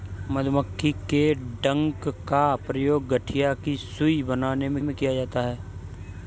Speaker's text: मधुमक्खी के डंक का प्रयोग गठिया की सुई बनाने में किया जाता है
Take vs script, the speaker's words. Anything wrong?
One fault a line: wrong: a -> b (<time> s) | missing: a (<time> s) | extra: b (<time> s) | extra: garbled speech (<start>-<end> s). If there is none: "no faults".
extra: में (4.8 s)